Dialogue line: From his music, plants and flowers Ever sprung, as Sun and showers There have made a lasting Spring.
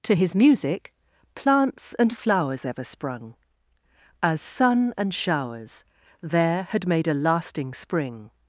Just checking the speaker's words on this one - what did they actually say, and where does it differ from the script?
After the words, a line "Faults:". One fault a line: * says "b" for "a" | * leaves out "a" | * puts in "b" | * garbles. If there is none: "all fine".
To his music, plants and flowers Ever sprung, as Sun and showers There had made a lasting Spring.
Faults:
* says "To" for "From"
* says "had" for "have"